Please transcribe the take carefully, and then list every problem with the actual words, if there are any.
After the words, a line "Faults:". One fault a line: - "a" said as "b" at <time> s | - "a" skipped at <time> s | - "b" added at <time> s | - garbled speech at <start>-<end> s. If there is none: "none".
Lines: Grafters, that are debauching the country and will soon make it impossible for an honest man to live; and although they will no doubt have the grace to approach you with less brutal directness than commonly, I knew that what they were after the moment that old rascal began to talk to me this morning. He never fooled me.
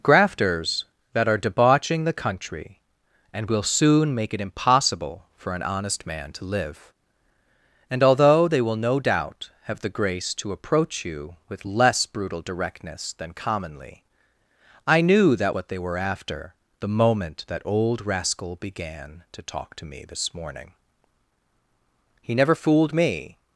Grafters, that are debauching the country and will soon make it impossible for an honest man to live; and although they will no doubt have the grace to approach you with less brutal directness than commonly, I knew that what they were after the moment that old rascal began to talk to me this morning. He never fooled me.
Faults:
none